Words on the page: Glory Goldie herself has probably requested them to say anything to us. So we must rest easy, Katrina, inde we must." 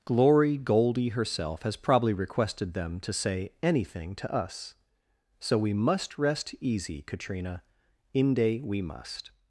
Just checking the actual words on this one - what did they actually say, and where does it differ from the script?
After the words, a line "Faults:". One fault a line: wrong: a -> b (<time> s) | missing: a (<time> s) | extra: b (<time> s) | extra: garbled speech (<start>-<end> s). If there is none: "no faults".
Glory Goldie herself has probably requested them to say anything to us. So we must rest easy, Katrina, inde we must."
Faults:
no faults